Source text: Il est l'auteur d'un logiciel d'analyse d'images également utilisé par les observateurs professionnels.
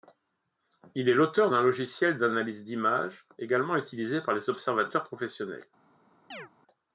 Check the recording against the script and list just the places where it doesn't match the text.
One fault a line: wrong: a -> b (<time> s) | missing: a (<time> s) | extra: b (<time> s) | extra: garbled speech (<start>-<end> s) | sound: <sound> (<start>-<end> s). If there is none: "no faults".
sound: chirp (6.3-6.5 s)